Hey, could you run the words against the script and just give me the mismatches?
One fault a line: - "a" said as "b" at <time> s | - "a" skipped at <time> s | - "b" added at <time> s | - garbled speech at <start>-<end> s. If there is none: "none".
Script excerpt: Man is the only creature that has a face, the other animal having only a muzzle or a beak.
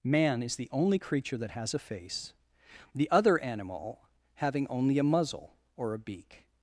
none